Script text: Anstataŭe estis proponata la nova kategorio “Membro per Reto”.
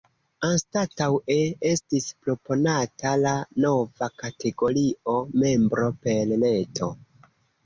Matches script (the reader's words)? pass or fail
pass